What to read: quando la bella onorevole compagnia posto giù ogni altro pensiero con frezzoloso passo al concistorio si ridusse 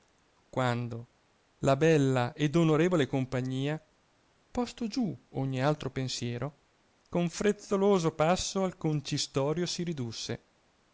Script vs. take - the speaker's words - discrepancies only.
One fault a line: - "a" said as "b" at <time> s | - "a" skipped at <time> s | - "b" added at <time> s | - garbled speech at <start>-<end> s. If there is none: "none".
- "ed" added at 2.3 s